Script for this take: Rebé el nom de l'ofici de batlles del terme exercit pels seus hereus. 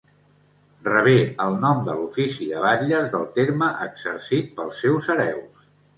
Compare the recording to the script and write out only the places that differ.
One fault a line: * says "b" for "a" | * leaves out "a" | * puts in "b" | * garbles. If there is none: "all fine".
all fine